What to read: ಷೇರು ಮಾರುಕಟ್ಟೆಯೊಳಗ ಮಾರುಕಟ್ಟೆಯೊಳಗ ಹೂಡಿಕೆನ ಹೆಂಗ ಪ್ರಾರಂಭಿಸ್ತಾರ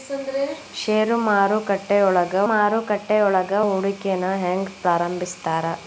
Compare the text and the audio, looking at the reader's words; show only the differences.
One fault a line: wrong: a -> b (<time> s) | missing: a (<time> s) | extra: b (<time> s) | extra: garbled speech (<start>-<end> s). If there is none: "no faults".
no faults